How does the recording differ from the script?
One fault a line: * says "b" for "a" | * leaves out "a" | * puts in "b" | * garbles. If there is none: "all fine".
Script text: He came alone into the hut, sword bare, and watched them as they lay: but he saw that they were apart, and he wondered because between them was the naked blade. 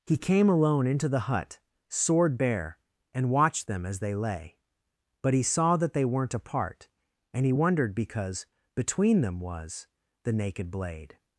* says "weren't" for "were"